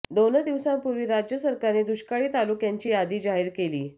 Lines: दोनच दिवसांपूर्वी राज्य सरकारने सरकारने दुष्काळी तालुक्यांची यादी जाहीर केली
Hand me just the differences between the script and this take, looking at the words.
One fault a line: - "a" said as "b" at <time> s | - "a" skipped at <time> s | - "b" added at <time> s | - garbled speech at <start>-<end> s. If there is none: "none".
- "सरकारने" skipped at 1.8 s